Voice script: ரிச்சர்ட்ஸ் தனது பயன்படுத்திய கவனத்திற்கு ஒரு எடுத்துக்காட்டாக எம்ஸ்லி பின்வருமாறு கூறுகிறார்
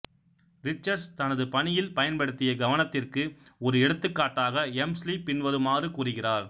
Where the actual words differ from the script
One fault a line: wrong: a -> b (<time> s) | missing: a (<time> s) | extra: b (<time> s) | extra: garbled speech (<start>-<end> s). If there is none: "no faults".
extra: பணியில் (1.5 s)